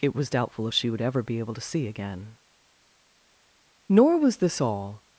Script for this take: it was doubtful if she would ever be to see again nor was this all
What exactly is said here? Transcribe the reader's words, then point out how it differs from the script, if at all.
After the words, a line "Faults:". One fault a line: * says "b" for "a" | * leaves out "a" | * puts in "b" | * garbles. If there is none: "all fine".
it was doubtful if she would ever be able to see again nor was this all
Faults:
* puts in "able"